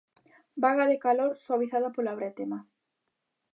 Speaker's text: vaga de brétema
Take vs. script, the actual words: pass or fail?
fail